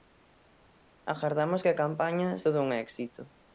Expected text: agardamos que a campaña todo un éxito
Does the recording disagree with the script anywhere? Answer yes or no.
no